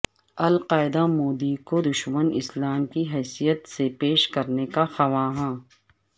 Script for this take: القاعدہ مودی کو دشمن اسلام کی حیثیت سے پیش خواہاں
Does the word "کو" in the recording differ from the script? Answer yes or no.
no